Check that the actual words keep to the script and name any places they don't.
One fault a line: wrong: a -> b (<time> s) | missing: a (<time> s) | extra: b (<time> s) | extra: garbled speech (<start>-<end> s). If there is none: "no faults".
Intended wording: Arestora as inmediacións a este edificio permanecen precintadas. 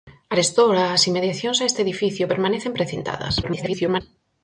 extra: garbled speech (3.4-4.0 s)